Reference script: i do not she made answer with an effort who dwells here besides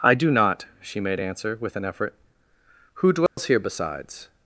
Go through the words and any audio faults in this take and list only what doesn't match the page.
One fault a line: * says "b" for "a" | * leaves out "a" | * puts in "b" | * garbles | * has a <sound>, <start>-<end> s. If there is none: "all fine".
* has a dropout, 3.3-3.4 s